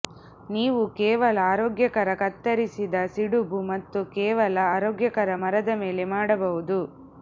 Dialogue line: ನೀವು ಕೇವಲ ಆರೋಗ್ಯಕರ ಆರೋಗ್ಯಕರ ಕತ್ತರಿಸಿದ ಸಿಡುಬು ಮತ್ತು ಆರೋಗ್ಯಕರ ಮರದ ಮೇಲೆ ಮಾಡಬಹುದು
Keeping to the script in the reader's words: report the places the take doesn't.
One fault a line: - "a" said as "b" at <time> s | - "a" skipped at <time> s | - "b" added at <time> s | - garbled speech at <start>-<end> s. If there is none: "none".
- "ಆರೋಗ್ಯಕರ" skipped at 2.1 s
- "ಕೇವಲ" added at 4.1 s